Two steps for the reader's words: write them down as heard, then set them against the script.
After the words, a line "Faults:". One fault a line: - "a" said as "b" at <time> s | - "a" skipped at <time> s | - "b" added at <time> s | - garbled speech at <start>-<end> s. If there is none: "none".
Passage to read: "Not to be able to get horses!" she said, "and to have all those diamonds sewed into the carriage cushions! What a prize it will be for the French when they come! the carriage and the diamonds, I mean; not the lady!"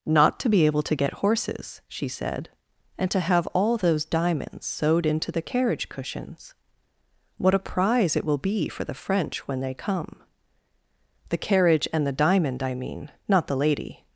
"Not to be able to get horses!" she said, "and to have all those diamonds sewed into the carriage cushions! What a prize it will be for the French when they come! the carriage and the diamond, I mean; not the lady!"
Faults:
- "diamonds" said as "diamond" at 12.1 s